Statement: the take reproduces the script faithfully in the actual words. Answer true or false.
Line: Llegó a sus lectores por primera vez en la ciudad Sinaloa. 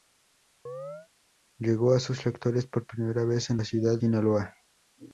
true